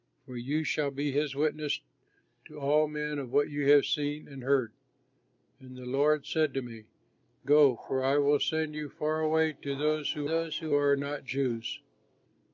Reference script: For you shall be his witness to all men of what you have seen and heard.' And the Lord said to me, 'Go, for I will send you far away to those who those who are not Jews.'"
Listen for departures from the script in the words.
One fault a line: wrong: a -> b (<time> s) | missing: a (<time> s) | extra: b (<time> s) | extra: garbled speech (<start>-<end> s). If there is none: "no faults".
no faults